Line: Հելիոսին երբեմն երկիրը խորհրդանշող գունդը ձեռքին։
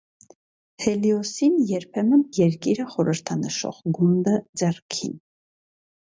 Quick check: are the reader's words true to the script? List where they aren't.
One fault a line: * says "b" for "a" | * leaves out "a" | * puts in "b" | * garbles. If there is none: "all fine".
all fine